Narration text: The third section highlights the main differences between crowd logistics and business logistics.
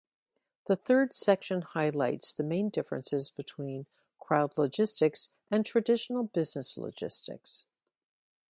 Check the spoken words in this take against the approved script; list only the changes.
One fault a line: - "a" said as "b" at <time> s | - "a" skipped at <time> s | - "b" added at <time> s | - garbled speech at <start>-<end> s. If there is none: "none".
- "traditional" added at 5.7 s